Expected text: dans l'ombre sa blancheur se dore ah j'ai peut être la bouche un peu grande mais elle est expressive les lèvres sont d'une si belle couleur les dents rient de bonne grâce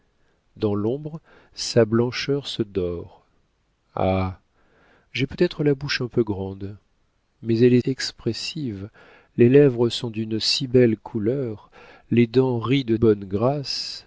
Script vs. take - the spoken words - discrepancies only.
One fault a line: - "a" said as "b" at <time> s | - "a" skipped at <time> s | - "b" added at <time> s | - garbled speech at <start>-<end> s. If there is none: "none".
none